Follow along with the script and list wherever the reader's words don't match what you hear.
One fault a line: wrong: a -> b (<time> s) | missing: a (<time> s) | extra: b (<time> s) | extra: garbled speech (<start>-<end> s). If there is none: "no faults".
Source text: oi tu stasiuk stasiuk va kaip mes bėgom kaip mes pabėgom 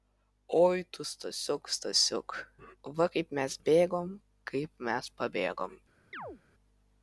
no faults